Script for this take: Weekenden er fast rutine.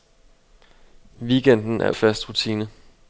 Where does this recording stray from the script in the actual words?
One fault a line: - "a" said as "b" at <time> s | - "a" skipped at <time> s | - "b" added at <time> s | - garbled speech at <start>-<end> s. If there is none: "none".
none